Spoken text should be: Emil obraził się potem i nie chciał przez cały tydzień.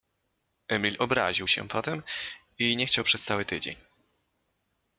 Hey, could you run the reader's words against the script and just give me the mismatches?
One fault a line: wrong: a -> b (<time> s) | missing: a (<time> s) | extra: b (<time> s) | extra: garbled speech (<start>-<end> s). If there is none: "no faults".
no faults